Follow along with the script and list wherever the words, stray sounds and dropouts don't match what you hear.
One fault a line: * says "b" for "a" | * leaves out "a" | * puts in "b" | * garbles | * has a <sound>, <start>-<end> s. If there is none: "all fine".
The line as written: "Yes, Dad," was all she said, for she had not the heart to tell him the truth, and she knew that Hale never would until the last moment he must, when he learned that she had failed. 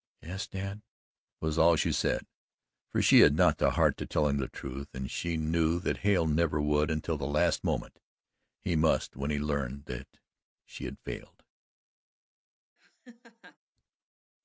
* has a laugh, 12.8-13.6 s